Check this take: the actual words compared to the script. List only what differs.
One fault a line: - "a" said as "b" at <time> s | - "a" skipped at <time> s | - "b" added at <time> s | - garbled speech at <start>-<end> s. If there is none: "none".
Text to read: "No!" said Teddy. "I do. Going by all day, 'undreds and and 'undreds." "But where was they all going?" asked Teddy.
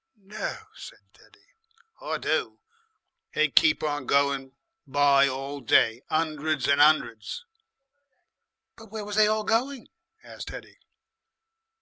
- "They'd keep on" added at 3.3 s
- "and" skipped at 6.8 s